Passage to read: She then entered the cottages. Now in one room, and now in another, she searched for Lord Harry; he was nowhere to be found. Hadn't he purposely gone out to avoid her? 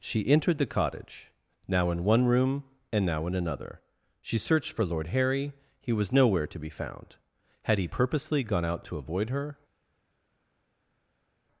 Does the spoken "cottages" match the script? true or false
false